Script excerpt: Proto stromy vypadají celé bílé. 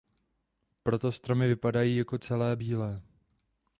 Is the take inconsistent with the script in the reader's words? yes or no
yes